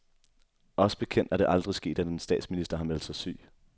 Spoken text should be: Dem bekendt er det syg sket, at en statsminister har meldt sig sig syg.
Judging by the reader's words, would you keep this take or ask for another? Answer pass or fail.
fail